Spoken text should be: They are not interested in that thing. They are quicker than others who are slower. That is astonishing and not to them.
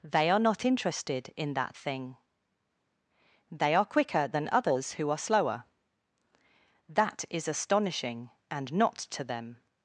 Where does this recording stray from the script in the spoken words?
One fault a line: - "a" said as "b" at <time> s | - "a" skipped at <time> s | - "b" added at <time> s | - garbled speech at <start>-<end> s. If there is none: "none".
none